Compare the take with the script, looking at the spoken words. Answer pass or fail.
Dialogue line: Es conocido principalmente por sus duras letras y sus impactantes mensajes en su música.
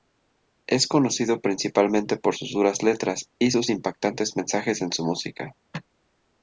pass